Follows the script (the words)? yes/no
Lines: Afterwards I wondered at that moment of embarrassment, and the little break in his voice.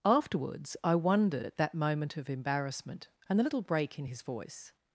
yes